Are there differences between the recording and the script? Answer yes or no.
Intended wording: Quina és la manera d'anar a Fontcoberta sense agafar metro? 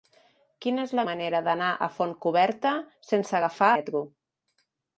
no